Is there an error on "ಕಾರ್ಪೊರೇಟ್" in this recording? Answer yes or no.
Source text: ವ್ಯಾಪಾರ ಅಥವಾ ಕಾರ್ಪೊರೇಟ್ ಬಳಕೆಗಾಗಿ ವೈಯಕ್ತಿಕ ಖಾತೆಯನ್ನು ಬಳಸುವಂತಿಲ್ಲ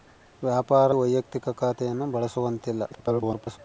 yes